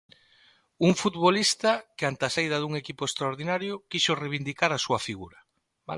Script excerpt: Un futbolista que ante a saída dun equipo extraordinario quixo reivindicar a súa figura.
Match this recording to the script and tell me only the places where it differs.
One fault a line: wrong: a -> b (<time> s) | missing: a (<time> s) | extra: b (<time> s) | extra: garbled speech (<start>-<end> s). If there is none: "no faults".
no faults